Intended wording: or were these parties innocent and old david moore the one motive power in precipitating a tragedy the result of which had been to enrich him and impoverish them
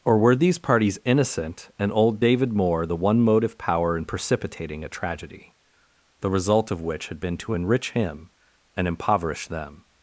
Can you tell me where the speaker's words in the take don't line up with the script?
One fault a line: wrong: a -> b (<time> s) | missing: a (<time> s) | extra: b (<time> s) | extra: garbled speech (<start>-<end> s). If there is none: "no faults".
no faults